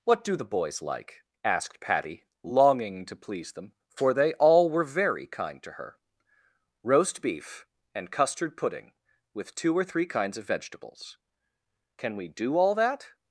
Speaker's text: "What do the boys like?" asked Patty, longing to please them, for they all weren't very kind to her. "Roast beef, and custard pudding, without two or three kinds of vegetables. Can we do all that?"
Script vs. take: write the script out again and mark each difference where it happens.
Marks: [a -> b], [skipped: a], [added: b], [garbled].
"What do the boys like?" asked Patty, longing to please them, for they all [weren't -> were] very kind to her. "Roast beef, and custard pudding, [without -> with] two or three kinds of vegetables. Can we do all that?"